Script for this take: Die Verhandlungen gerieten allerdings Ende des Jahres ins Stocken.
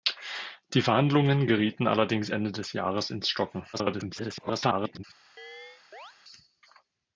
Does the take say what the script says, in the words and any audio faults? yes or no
no